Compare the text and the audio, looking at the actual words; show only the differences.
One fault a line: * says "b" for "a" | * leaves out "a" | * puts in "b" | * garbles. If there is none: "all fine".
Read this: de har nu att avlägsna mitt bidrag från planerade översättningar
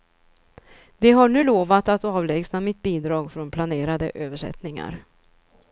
* puts in "lovat"